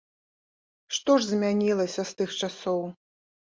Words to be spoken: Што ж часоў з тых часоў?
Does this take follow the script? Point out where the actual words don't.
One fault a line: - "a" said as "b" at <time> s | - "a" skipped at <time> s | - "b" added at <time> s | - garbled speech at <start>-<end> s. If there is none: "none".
- "часоў" said as "змянілася" at 1.3 s